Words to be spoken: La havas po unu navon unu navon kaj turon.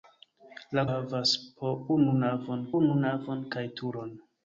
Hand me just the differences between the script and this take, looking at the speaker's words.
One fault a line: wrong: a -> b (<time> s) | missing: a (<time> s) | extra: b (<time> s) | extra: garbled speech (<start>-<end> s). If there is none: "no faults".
no faults